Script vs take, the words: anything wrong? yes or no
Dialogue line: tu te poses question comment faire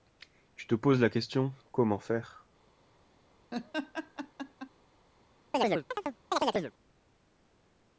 yes